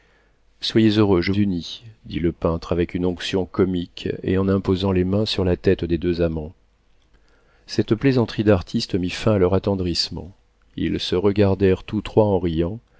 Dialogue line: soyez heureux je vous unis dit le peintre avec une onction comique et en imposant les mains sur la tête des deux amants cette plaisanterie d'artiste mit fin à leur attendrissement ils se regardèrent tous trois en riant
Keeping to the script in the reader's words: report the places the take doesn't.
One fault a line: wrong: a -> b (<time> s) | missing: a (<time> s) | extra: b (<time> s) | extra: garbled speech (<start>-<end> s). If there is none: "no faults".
missing: vous (1.3 s)